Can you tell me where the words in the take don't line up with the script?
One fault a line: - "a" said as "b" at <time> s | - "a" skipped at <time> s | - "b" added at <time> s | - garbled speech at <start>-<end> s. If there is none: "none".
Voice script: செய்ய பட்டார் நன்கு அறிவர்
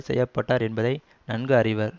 - "என்பதை" added at 0.6 s